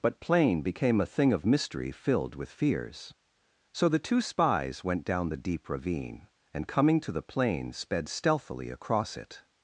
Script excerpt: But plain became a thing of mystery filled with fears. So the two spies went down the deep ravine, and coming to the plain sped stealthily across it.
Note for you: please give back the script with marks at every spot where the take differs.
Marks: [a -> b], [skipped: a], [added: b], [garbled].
But plain became a thing of mystery filled with fears. So the two spies went down the deep ravine, and coming to the plain sped stealthily across it.